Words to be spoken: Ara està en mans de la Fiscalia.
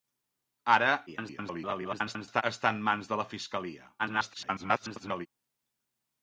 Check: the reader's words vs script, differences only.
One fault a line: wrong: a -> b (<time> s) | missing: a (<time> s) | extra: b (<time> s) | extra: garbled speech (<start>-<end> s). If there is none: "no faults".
extra: garbled speech (1.1-2.4 s)
extra: garbled speech (4.0-5.3 s)